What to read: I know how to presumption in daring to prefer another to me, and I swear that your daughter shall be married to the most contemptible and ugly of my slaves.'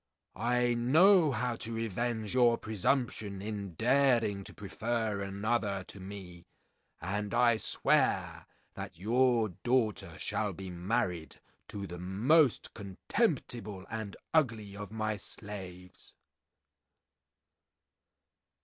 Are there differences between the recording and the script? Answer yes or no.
yes